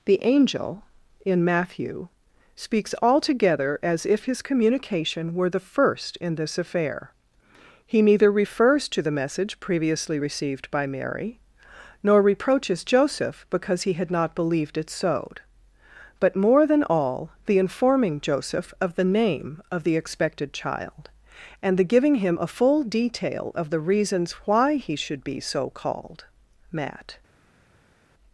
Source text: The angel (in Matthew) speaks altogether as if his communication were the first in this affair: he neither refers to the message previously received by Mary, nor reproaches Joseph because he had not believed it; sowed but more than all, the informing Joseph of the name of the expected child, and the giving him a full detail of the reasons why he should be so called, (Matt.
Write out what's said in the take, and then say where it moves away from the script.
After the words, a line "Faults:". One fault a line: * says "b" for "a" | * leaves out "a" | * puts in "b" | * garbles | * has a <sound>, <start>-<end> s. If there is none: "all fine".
The angel (in Matthew) speaks altogether as if his communication were the first in this affair: he neither refers to the message previously received by Mary, nor reproaches Joseph because he had not believed it; sowed but more than all, the informing Joseph of the name of the expected child, and the giving him a full detail of the reasons why he should be so called, (Matt.
Faults:
all fine